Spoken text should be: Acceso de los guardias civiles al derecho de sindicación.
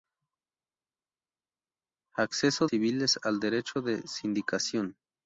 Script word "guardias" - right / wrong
wrong